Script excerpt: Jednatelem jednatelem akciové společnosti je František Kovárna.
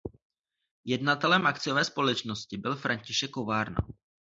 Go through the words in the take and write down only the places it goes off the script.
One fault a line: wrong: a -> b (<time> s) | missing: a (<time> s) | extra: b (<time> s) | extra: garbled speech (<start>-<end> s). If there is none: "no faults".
missing: jednatelem (1.5 s)
wrong: je -> byl (2.6 s)